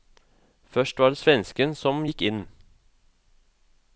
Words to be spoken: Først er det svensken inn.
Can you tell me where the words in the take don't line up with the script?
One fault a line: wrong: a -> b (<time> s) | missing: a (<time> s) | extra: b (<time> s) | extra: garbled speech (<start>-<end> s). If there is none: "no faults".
wrong: er -> var (1.0 s)
extra: som gikk (1.8 s)